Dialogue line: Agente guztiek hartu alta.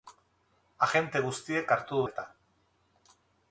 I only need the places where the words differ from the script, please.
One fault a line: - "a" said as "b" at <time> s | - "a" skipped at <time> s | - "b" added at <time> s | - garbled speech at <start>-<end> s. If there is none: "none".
none